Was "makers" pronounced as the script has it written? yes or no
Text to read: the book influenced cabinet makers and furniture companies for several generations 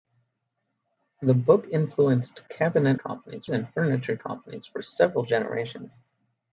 no